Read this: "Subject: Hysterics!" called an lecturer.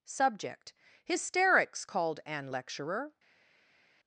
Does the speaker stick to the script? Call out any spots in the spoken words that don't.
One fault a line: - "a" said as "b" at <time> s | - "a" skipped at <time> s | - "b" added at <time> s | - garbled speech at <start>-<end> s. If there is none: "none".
none